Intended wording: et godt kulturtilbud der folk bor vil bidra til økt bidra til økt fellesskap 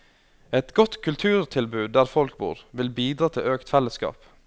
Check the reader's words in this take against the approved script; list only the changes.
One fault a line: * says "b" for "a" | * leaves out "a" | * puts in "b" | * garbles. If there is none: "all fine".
* leaves out "bidra til økt"